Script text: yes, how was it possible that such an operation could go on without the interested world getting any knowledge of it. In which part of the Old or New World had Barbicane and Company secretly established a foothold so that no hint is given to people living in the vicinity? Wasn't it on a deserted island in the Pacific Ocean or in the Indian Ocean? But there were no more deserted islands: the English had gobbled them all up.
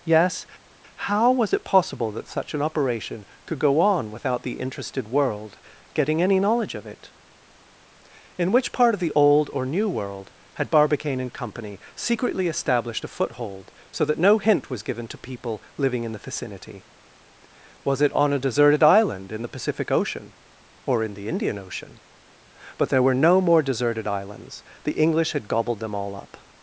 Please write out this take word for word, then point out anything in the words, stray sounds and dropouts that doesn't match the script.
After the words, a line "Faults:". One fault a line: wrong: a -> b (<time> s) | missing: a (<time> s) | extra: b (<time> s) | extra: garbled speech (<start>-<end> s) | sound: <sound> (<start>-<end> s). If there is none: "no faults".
yes, how was it possible that such an operation could go on without the interested world getting any knowledge of it. In which part of the Old or New World had Barbicane and Company secretly established a foothold so that no hint was given to people living in the vicinity? Was it on a deserted island in the Pacific Ocean or in the Indian Ocean? But there were no more deserted islands: the English had gobbled them all up.
Faults:
wrong: is -> was (14.7 s)
wrong: Wasn't -> Was (17.8 s)